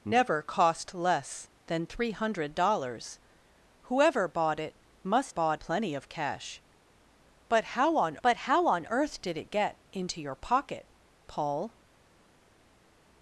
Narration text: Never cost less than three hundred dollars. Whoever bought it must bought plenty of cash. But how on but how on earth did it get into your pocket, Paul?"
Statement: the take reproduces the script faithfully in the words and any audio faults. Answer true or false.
true